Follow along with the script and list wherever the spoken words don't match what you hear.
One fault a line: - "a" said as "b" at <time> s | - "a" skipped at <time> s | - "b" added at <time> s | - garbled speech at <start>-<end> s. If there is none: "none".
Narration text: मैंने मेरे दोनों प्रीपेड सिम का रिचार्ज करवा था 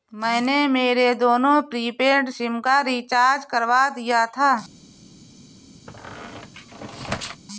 - "दिया" added at 3.9 s